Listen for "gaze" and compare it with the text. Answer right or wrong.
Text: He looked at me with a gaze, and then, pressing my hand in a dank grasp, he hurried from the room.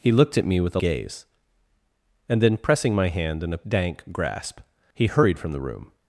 right